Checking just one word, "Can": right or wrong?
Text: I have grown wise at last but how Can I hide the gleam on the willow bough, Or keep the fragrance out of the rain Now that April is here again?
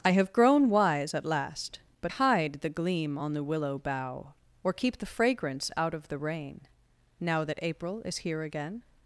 wrong